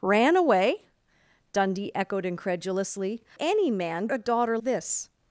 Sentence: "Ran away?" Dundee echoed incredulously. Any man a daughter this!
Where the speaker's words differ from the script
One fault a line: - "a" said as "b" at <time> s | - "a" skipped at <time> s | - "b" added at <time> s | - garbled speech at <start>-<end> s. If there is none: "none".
none